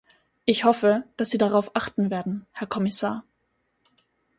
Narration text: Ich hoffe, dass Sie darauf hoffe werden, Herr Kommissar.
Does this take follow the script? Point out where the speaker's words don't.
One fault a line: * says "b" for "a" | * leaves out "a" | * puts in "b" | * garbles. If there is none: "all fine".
* says "achten" for "hoffe"